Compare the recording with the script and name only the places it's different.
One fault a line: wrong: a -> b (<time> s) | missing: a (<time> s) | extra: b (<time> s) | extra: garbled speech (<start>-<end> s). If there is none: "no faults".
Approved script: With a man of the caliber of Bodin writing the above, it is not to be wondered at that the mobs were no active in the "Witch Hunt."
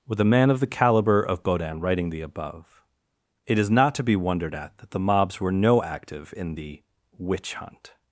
no faults